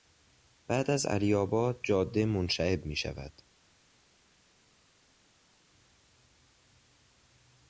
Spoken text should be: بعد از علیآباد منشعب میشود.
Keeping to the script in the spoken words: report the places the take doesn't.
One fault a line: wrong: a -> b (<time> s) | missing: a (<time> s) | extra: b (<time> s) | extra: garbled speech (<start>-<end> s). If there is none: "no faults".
extra: جاده (1.8 s)